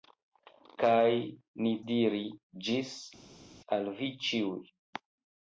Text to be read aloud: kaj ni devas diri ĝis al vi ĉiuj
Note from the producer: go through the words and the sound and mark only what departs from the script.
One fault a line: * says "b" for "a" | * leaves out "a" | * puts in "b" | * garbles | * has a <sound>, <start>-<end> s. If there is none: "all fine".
* leaves out "devas"